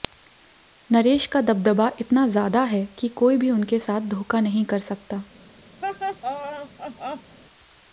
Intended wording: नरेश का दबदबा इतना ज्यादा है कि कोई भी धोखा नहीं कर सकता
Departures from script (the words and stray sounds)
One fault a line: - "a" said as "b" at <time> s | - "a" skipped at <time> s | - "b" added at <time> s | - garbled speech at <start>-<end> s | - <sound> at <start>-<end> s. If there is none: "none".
- "उनके साथ" added at 3.5 s
- laugh at 5.8-7.4 s